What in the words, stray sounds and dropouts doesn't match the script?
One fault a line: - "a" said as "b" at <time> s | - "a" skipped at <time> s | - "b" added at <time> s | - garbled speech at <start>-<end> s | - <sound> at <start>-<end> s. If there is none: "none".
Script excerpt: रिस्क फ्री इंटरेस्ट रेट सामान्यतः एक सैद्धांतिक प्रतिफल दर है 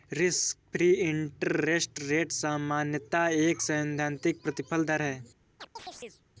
- chirp at 5.6-6.2 s